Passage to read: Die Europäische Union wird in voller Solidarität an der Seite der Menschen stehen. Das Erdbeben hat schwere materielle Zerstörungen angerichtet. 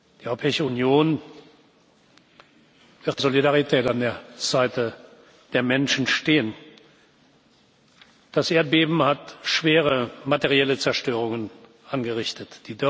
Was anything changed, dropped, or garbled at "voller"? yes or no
yes